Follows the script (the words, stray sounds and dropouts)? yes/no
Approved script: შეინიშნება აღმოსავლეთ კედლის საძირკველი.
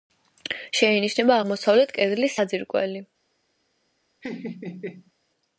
no